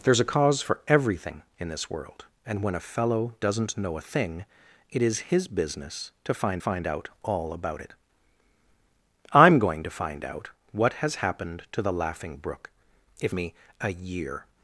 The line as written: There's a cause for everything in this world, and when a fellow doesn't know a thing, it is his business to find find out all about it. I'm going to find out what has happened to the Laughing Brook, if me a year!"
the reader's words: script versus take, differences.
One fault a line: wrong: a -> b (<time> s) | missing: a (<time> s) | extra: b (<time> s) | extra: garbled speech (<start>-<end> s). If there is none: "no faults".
no faults